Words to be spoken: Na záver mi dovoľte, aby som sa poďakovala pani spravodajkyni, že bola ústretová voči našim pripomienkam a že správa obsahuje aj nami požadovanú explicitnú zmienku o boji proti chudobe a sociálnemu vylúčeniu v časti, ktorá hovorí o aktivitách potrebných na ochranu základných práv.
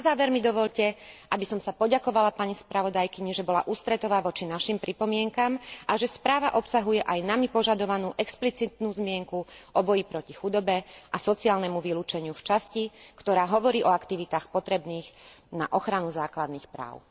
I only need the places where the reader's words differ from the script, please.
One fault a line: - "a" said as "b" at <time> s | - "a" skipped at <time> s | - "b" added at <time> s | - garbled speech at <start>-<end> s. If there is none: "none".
none